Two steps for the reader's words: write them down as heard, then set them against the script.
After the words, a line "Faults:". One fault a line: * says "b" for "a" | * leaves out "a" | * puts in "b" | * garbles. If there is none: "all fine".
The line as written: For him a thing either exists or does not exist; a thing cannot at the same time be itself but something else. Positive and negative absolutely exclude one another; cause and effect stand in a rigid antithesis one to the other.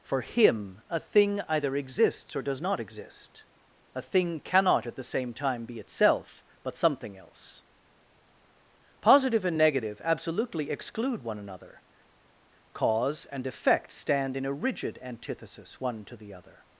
For him a thing either exists or does not exist; a thing cannot at the same time be itself but something else. Positive and negative absolutely exclude one another; cause and effect stand in a rigid antithesis one to the other.
Faults:
all fine